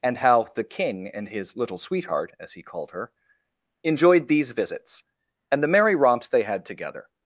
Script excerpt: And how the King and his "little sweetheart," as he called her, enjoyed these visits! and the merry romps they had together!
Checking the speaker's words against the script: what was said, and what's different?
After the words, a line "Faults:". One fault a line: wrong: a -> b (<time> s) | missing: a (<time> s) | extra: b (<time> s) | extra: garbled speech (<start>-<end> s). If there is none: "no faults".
And how the King and his "little sweetheart," as he called her, enjoyed these visits! and the merry romps they had together!
Faults:
no faults